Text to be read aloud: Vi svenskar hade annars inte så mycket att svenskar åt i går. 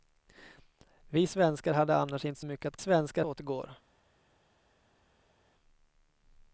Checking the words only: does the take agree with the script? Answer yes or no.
yes